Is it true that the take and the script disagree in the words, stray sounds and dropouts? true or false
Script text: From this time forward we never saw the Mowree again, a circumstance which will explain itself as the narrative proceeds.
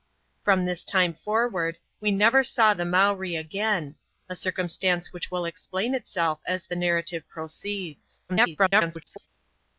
true